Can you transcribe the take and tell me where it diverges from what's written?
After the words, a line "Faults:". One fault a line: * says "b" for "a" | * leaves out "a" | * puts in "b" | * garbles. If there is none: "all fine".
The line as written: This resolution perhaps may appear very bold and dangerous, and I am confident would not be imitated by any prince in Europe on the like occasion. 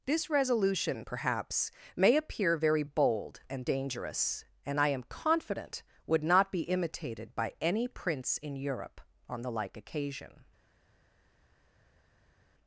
This resolution perhaps may appear very bold and dangerous, and I am confident would not be imitated by any prince in Europe on the like occasion.
Faults:
all fine